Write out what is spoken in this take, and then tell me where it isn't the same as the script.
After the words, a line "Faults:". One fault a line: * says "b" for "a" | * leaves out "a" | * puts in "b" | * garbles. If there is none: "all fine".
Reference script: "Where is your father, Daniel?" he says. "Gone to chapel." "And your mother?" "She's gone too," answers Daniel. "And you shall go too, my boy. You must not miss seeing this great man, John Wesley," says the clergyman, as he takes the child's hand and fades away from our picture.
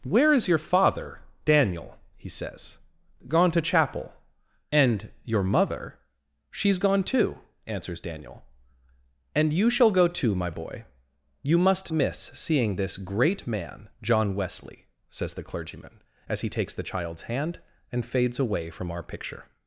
"Where is your father, Daniel?" he says. "Gone to chapel." "And your mother?" "She's gone too," answers Daniel. "And you shall go too, my boy. You must miss seeing this great man, John Wesley," says the clergyman, as he takes the child's hand and fades away from our picture.
Faults:
* leaves out "not"